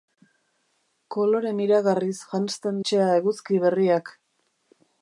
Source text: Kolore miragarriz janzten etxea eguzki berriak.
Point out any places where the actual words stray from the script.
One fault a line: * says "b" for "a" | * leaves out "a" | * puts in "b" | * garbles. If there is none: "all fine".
all fine